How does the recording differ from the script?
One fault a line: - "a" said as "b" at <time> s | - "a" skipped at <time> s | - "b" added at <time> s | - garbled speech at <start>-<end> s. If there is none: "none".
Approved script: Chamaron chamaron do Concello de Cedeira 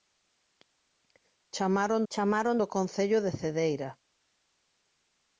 none